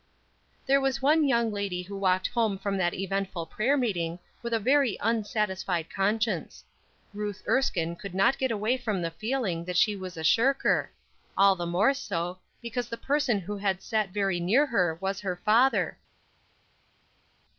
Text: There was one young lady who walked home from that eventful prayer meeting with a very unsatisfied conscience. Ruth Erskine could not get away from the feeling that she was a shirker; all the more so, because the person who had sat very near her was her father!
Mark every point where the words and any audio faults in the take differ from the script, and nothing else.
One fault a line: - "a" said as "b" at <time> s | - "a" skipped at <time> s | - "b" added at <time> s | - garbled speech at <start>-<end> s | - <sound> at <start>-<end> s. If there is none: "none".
none